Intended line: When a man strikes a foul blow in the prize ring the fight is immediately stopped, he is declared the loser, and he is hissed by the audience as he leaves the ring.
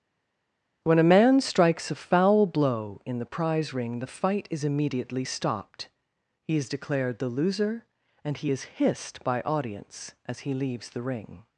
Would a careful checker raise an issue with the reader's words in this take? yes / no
yes